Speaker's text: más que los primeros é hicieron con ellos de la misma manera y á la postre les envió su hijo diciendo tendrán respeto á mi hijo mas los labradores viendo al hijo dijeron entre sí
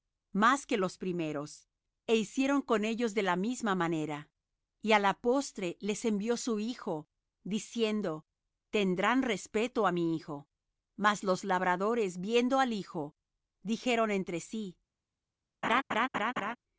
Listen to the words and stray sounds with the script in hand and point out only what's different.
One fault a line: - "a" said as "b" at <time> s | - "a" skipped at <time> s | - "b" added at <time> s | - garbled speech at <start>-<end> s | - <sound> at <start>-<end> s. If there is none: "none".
- laugh at 15.6-16.6 s